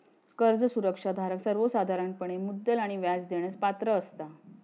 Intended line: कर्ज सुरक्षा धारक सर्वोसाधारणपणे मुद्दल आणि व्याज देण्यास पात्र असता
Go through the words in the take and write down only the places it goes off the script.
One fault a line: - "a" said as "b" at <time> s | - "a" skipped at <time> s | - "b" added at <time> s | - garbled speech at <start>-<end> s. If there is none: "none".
none